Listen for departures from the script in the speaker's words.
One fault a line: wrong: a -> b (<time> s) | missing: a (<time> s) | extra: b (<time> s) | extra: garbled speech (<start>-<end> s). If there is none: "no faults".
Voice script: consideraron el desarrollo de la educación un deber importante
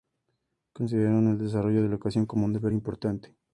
extra: como (2.2 s)